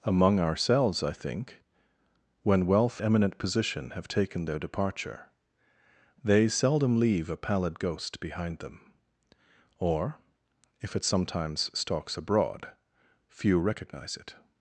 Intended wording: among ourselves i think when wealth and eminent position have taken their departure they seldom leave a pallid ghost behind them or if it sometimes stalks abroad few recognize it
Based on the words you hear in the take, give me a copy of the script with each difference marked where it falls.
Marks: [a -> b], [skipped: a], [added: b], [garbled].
among ourselves i think when wealth [skipped: and] eminent position have taken their departure they seldom leave a pallid ghost behind them or if it sometimes stalks abroad few recognize it